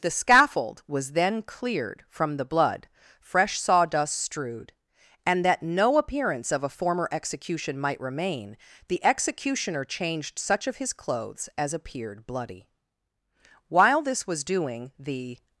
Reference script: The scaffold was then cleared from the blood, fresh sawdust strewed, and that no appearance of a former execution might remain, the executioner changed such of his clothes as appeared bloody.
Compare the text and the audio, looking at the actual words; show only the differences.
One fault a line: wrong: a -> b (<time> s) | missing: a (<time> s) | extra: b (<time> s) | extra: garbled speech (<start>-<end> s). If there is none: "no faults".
extra: While this was doing the (13.7 s)